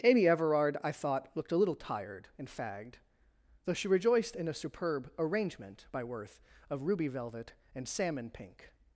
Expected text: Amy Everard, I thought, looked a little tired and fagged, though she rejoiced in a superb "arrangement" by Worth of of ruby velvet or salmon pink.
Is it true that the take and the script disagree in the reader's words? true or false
true